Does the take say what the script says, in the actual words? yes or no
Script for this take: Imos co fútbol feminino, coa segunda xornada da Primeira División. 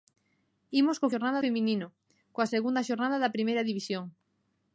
no